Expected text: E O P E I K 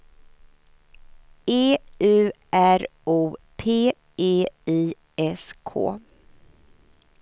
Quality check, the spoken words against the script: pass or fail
fail